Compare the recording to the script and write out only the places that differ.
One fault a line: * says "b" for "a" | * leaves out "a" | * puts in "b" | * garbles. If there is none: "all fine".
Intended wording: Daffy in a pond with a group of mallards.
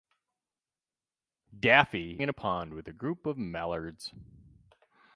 all fine